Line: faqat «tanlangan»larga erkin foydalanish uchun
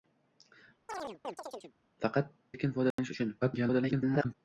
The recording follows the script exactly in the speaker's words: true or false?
false